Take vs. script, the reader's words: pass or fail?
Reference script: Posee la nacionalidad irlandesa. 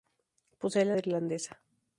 fail